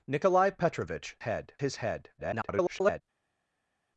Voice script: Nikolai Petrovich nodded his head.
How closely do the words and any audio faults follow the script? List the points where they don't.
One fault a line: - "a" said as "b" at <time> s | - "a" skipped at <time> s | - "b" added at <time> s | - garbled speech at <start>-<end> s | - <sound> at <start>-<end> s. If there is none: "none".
- "nodded" said as "head" at 1.3 s
- garbled speech at 2.2-3.0 s